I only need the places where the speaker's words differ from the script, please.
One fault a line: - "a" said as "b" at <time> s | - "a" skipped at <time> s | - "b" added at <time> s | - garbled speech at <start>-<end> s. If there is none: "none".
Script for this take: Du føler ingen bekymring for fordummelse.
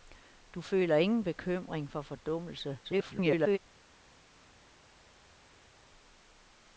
- garbled speech at 2.8-3.6 s